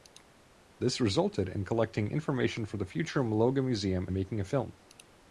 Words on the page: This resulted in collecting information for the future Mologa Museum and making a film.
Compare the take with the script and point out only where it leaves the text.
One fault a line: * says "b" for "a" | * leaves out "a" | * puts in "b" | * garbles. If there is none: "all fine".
* leaves out "and"